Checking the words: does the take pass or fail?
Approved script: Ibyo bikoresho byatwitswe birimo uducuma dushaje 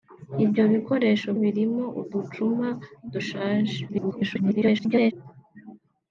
fail